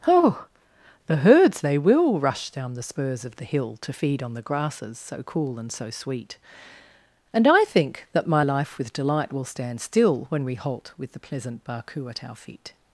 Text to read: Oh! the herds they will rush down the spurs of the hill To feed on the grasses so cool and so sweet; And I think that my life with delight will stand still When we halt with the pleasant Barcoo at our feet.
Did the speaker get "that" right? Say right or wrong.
right